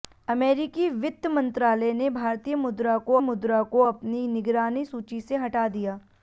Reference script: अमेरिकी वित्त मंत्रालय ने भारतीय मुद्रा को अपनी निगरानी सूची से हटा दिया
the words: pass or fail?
fail